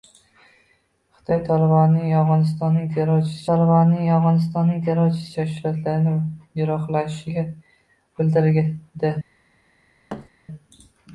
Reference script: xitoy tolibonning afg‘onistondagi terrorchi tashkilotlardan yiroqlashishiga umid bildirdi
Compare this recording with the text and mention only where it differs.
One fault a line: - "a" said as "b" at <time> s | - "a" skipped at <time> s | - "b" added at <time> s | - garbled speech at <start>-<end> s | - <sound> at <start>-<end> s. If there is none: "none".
- "tolibonning afg‘onistondagi terrorchi" added at 3.5 s
- "umid" skipped at 7.5 s
- thud at 10.1-10.3 s